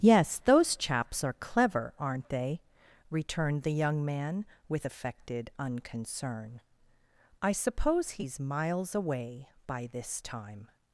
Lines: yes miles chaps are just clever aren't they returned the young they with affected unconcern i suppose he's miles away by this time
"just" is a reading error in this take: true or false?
true